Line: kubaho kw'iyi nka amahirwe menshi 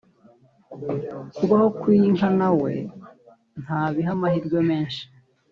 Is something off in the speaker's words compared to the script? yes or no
yes